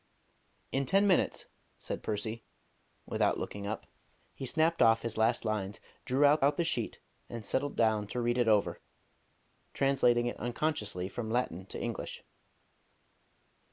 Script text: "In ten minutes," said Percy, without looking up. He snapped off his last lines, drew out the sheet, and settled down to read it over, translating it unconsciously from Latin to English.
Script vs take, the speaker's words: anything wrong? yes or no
yes